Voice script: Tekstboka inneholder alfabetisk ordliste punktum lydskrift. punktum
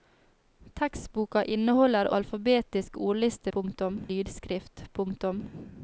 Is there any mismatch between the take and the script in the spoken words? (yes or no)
no